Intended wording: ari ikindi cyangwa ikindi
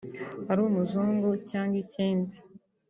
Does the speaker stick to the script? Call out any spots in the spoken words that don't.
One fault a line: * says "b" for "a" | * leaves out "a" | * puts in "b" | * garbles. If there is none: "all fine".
* says "umuzungu" for "ikindi"